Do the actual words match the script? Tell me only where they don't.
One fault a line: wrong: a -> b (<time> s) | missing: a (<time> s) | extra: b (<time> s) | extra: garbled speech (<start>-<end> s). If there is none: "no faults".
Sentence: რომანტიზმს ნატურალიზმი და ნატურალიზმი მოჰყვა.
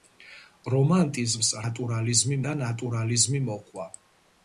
no faults